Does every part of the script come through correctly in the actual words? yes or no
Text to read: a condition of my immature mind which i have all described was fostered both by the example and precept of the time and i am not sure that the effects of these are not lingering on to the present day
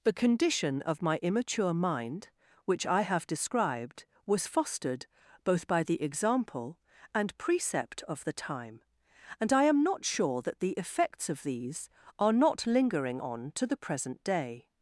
no